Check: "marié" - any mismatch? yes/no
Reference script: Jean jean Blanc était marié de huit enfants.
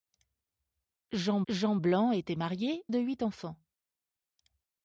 no